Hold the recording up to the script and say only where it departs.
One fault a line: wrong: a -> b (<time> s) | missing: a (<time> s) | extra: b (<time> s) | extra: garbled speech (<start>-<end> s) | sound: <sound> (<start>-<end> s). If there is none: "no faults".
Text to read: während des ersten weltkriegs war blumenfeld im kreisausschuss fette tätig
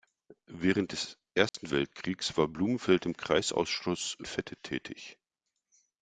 sound: dropout (1.5-1.5 s)